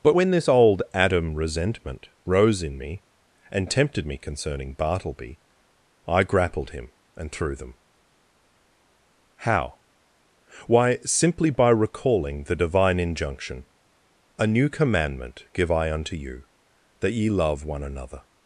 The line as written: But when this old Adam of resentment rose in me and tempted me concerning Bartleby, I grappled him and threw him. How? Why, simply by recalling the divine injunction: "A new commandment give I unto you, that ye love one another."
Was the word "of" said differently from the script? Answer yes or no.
yes